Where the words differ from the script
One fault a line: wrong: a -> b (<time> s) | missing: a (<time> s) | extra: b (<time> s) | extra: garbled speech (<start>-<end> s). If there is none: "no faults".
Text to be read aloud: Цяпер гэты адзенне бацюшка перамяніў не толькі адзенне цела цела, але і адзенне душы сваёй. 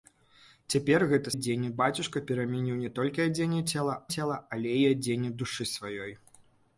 no faults